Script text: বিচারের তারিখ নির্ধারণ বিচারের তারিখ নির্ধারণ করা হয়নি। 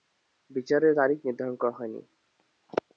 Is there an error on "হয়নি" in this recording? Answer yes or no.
no